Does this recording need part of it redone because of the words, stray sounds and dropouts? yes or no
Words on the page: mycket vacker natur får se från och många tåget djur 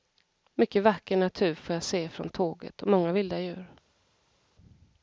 yes